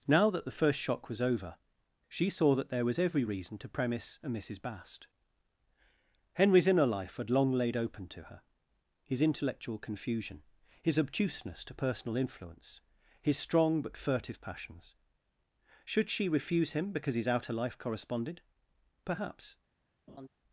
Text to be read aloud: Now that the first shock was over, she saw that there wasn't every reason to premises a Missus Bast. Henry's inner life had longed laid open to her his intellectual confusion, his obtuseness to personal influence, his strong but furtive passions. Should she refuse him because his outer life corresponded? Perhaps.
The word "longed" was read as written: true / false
false